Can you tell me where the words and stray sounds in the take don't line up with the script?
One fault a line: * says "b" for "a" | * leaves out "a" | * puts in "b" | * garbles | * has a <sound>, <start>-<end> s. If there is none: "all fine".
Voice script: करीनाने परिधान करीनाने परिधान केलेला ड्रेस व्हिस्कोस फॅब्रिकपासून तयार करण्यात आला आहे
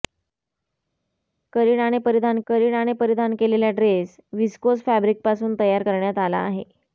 all fine